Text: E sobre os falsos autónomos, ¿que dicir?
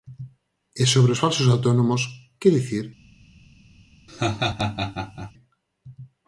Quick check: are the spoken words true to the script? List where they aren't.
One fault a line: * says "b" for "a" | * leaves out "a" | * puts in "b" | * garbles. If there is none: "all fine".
all fine